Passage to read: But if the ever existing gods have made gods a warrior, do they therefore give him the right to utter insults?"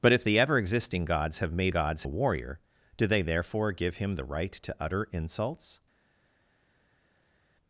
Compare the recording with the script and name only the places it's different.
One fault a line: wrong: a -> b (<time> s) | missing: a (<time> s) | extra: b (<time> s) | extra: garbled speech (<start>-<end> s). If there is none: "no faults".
no faults